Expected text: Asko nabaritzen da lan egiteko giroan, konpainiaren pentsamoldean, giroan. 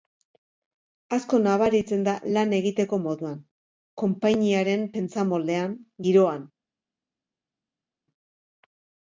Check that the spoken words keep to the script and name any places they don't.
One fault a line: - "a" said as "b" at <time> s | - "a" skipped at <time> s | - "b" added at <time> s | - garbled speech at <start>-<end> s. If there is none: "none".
- "giroan" said as "moduan" at 3.1 s